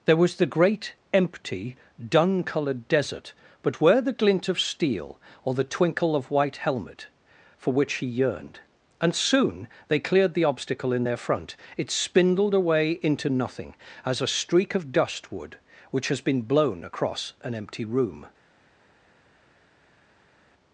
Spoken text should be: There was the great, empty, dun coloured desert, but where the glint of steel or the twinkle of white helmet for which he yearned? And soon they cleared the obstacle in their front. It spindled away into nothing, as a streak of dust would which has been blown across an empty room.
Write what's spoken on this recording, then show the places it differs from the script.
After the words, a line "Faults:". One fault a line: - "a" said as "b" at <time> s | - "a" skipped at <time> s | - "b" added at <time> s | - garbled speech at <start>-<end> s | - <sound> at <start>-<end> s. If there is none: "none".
There was the great, empty, dun coloured desert, but where the glint of steel or the twinkle of white helmet for which he yearned? And soon they cleared the obstacle in their front. It spindled away into nothing, as a streak of dust would which has been blown across an empty room.
Faults:
none